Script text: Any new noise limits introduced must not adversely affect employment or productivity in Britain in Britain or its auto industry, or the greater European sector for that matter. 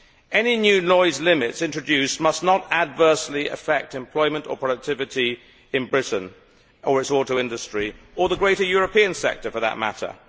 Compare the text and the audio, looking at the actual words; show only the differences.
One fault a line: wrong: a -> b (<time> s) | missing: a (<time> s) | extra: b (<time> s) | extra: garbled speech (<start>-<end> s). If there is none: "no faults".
missing: in Britain (6.3 s)